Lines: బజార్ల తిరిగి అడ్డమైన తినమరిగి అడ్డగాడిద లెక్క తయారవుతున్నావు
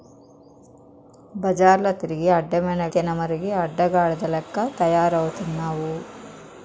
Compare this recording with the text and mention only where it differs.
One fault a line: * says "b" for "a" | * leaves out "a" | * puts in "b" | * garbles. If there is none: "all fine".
all fine